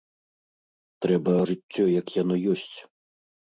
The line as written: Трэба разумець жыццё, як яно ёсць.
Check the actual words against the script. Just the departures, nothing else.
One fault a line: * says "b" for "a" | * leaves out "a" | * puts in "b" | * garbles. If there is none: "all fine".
* leaves out "разумець"